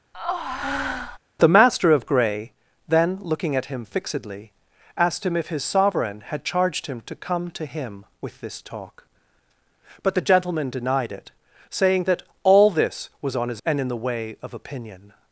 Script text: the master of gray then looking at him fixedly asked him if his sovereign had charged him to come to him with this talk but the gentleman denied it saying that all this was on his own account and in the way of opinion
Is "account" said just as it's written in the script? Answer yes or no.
no